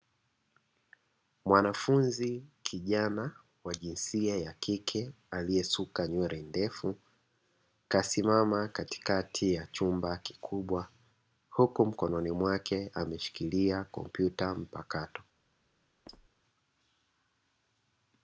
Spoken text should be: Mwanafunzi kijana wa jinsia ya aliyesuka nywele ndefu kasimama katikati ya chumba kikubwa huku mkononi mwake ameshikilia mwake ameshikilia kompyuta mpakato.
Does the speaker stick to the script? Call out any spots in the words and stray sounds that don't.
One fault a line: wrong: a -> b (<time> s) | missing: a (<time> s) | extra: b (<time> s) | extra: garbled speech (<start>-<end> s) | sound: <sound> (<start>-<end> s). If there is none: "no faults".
extra: kike (4.5 s)
missing: mwake ameshikilia (13.8 s)
sound: squeak (16.1-16.3 s)